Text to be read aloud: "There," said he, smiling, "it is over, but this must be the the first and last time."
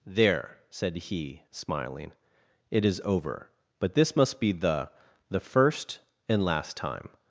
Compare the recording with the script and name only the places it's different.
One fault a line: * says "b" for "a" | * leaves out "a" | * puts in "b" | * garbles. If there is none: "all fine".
all fine